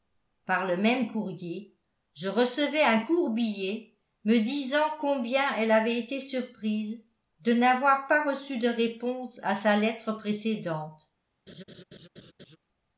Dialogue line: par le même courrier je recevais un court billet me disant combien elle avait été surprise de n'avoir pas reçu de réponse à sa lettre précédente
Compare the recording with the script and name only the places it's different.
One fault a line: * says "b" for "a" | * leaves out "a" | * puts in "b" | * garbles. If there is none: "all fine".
all fine